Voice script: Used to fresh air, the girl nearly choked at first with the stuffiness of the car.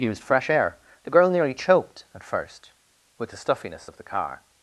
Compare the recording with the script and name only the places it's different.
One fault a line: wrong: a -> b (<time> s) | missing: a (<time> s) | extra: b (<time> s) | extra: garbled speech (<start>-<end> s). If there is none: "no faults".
missing: to (0.2 s)